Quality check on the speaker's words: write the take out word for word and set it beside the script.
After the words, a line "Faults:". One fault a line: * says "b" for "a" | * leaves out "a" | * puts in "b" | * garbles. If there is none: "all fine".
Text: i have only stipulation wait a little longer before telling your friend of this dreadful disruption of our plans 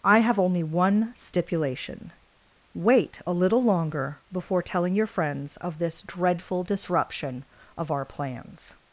i have only one stipulation wait a little longer before telling your friends of this dreadful disruption of our plans
Faults:
* puts in "one"
* says "friends" for "friend"